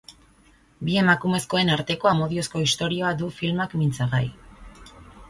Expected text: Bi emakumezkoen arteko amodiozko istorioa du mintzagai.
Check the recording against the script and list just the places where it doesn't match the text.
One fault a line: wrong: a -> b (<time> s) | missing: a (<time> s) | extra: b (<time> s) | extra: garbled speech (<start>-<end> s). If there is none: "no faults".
extra: filmak (3.4 s)